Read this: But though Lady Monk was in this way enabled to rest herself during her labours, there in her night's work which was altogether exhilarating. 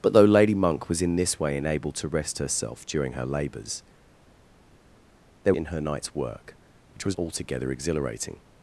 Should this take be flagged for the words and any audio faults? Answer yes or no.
no